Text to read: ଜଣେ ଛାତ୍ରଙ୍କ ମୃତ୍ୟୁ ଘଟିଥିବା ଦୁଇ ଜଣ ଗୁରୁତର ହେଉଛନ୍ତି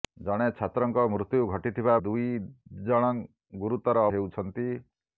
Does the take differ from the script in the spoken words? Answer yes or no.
no